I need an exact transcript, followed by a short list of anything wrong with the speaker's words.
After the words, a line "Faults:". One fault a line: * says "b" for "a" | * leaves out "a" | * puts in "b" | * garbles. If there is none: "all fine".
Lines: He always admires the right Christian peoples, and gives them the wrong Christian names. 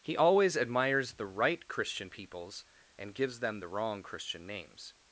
He always admires the right Christian peoples, and gives them the wrong Christian names.
Faults:
all fine